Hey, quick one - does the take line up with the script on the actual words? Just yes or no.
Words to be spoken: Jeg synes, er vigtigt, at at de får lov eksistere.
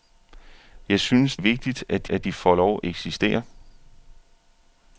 yes